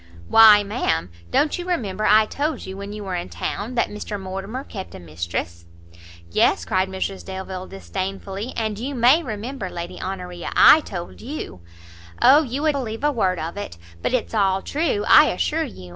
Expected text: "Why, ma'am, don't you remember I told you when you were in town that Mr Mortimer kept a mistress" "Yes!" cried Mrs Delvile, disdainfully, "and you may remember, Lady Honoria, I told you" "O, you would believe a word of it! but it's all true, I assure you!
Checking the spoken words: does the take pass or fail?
pass